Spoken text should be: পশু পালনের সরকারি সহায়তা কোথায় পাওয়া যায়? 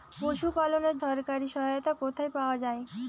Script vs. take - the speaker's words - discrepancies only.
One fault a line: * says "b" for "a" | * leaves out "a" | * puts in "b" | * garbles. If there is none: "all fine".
all fine